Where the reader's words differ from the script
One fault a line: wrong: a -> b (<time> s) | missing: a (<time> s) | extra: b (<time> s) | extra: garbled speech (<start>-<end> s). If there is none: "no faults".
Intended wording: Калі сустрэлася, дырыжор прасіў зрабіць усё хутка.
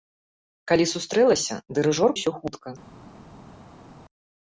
missing: прасіў зрабіць (2.1 s)